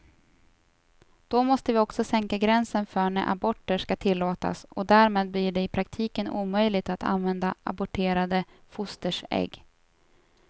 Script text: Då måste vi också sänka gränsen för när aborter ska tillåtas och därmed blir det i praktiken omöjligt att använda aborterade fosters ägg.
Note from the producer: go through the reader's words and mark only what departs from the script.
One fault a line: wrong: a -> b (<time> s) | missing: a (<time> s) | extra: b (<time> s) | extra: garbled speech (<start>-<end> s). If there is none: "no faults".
no faults